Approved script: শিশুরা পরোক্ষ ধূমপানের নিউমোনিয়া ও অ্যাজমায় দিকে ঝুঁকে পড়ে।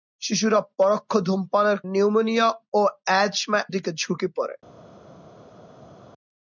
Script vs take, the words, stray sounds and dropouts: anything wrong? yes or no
no